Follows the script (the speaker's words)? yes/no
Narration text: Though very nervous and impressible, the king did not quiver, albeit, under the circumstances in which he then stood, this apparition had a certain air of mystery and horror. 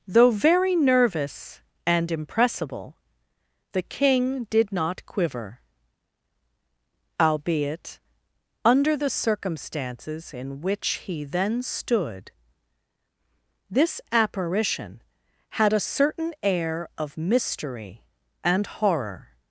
yes